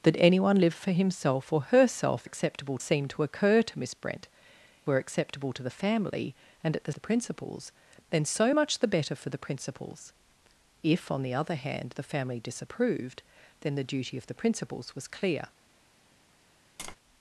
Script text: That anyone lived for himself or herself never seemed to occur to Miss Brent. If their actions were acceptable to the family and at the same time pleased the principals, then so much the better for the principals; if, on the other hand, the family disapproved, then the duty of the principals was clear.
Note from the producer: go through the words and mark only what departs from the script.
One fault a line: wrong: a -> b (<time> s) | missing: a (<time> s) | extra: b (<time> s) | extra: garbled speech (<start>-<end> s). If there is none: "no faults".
wrong: never -> acceptable (2.2 s)
missing: If their actions (4.3 s)
missing: same time pleased (6.9 s)